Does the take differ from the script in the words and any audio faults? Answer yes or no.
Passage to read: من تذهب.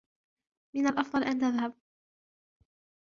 yes